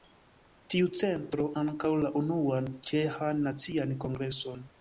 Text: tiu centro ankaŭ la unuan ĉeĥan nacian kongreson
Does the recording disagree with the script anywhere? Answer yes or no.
no